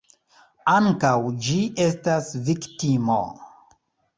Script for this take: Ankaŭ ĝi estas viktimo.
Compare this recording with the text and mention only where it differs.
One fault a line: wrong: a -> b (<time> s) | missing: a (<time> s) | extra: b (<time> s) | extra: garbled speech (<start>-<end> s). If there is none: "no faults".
no faults